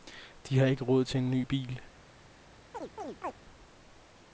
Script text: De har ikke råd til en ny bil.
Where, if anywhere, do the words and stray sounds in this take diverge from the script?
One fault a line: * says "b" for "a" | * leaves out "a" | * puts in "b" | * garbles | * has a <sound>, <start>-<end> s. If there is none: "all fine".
* has a chirp, 2.7-3.3 s